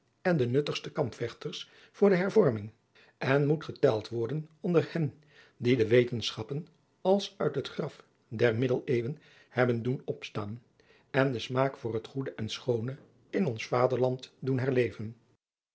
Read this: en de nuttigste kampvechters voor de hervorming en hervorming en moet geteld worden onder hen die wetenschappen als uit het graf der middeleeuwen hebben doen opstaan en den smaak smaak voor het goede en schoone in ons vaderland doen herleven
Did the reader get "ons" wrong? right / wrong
right